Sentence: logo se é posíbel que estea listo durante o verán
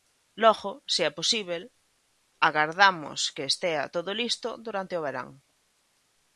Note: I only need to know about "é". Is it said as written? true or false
true